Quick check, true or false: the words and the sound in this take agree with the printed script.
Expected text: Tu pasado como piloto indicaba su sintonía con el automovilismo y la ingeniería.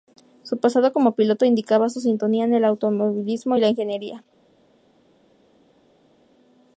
false